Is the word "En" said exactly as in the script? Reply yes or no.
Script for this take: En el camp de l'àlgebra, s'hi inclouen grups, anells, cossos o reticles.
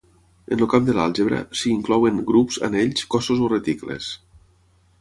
yes